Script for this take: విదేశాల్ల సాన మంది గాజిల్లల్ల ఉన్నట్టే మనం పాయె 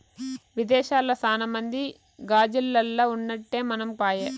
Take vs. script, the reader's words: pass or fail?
pass